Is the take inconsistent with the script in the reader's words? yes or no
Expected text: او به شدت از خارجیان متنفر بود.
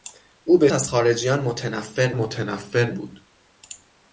yes